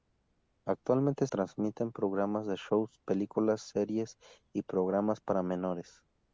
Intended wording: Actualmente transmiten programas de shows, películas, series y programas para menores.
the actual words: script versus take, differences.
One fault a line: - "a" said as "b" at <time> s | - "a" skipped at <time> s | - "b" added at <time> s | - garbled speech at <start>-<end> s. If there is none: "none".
none